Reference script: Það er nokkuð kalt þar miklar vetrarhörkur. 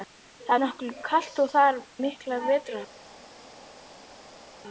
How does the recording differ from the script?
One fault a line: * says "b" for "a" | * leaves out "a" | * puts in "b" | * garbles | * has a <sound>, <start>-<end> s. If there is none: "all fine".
all fine